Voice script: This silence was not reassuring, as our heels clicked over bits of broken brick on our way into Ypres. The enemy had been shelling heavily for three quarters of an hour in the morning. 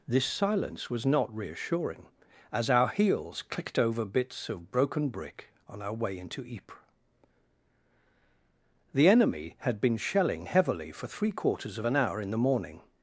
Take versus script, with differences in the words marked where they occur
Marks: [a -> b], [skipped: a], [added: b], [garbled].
This silence was not reassuring, as our heels clicked over bits of broken brick on our way into Ypres. The enemy had been shelling heavily for three quarters of an hour in the morning.